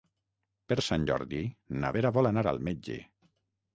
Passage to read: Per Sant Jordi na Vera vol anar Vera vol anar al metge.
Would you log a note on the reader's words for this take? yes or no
yes